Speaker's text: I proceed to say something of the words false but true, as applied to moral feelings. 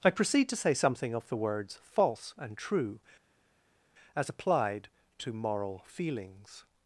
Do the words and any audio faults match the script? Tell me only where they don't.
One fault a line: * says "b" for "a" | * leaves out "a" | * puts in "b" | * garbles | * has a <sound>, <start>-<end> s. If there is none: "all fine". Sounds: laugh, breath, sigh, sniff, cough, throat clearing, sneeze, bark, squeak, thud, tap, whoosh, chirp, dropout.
* says "and" for "but"